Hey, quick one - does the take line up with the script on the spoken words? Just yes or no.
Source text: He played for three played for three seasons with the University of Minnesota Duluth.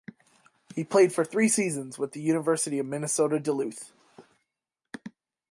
no